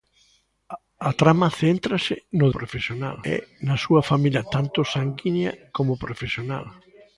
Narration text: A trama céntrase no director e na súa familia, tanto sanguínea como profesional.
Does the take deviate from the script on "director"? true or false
true